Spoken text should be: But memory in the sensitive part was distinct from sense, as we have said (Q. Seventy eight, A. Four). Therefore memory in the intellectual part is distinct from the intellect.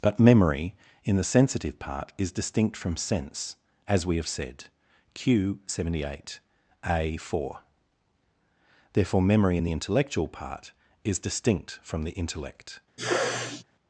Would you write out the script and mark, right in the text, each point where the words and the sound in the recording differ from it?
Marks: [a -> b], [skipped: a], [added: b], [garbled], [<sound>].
But memory in the sensitive part [was -> is] distinct from sense, as we have said (Q. Seventy eight, A. Four). Therefore memory in the intellectual part is distinct from the intellect. [sneeze]